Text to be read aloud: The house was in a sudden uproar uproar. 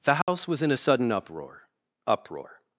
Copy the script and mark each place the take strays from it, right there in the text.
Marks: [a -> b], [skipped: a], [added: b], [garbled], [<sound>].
The house [dropout] was in a sudden uproar uproar.